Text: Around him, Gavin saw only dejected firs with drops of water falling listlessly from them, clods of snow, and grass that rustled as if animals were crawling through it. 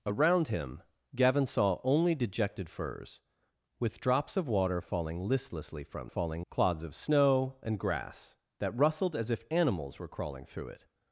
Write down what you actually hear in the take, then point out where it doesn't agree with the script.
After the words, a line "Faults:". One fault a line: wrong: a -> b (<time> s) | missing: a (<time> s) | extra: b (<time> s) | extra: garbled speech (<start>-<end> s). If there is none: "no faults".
Around him, Gavin saw only dejected firs with drops of water falling listlessly from falling, clods of snow, and grass that rustled as if animals were crawling through it.
Faults:
wrong: them -> falling (6.1 s)